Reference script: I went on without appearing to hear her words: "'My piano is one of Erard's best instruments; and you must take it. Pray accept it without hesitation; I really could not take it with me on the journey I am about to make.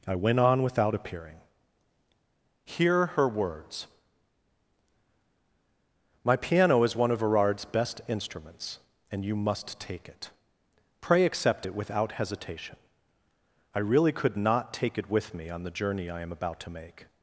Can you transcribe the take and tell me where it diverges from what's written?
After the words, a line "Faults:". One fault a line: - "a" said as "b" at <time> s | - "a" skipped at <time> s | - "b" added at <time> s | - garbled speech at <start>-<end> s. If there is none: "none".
I went on without appearing hear her words: "'My piano is one of Erard's best instruments; and you must take it. Pray accept it without hesitation; I really could not take it with me on the journey I am about to make.
Faults:
- "to" skipped at 1.4 s